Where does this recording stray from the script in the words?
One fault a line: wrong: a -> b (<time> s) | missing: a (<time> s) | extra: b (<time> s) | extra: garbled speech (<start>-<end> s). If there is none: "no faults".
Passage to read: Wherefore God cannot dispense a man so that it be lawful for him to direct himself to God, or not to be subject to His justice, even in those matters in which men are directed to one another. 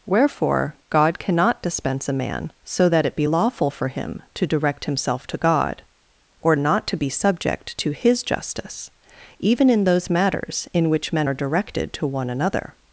no faults